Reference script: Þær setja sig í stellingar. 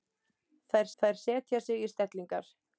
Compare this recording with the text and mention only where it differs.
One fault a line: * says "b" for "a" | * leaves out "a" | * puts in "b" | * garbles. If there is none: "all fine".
* puts in "þær"